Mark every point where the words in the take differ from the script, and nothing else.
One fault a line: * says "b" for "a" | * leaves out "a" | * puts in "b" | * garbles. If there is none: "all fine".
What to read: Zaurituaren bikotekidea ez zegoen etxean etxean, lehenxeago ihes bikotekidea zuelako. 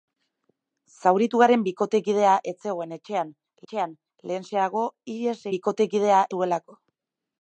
all fine